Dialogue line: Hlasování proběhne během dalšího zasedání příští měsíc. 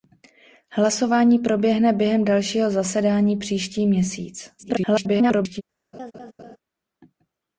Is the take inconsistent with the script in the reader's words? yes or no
yes